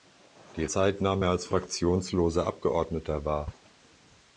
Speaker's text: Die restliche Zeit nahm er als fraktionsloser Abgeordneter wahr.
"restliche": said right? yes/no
no